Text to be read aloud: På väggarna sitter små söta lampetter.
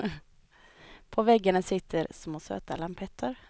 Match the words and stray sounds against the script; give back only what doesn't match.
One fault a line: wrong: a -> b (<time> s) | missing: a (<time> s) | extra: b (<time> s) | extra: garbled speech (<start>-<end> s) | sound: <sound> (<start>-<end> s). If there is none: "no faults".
no faults